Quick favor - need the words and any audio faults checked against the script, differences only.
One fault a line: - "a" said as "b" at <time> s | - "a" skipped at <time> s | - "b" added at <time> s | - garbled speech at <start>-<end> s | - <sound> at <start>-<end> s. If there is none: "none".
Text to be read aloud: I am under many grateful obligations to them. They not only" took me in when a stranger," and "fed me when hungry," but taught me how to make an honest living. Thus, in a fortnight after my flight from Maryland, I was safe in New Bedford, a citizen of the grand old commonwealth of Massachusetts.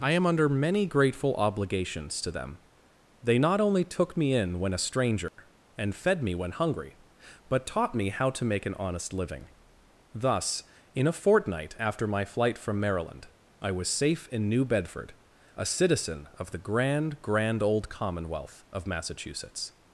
- dropout at 5.3-5.4 s
- "grand" added at 17.2 s